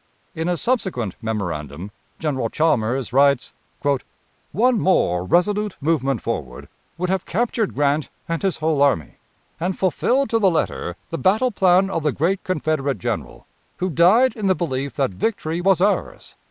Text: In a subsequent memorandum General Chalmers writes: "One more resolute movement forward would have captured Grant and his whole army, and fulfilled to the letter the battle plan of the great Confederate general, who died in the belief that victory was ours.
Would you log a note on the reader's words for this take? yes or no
no